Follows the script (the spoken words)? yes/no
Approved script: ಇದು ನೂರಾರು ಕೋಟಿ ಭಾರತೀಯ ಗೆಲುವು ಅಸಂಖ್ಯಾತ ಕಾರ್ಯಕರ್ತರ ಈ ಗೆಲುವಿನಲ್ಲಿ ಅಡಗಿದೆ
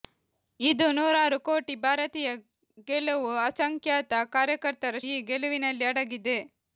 yes